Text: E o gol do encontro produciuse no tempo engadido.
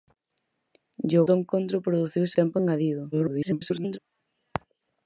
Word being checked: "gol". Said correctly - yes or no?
no